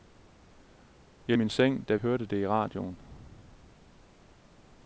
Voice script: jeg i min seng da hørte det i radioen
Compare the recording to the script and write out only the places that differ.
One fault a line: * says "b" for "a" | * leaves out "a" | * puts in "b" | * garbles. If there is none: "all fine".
all fine